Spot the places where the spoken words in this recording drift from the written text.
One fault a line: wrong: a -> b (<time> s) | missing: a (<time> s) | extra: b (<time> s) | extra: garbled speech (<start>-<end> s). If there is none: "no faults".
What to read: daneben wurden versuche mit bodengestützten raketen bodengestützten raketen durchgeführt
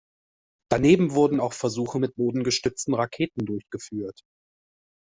extra: auch (1.4 s)
missing: bodengestützten raketen (3.4 s)